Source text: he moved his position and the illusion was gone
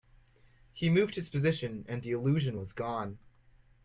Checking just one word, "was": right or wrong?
right